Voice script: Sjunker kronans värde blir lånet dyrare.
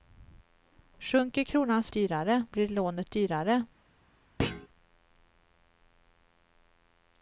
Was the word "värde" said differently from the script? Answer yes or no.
yes